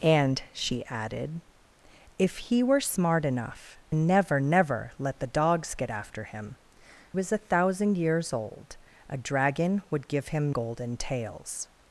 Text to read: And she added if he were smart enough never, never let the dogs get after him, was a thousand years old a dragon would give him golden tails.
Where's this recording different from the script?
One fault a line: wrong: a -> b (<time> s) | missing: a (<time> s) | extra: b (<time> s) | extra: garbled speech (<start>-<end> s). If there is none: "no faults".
no faults